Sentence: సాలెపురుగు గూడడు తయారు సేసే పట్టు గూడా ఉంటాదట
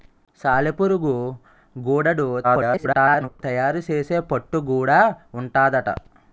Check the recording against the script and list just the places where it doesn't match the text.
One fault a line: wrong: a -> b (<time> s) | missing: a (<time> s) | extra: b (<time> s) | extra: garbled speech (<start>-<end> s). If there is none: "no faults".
extra: garbled speech (2.4-3.4 s)